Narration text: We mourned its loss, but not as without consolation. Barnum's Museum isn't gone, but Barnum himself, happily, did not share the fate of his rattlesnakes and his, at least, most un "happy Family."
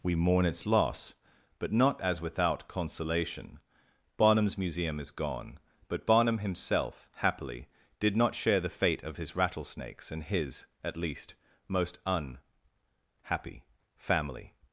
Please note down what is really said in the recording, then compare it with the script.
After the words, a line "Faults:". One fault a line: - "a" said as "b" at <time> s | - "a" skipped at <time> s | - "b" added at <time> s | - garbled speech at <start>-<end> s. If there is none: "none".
We mourn its loss, but not as without consolation. Barnum's Museum is gone, but Barnum himself, happily, did not share the fate of his rattlesnakes and his, at least, most un "happy Family."
Faults:
- "mourned" said as "mourn" at 0.1 s
- "isn't" said as "is" at 5.0 s